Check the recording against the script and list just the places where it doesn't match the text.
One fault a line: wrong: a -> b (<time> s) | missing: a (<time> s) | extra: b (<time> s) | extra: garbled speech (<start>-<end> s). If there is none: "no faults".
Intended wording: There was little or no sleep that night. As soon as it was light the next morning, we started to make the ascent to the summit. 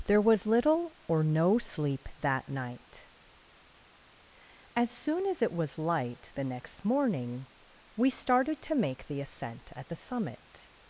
wrong: to -> at (9.8 s)